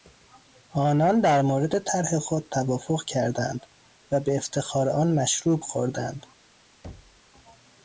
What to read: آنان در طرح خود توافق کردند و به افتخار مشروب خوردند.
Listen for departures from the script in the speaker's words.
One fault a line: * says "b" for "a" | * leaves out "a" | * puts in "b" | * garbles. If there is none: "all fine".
* puts in "مورد"
* puts in "آن"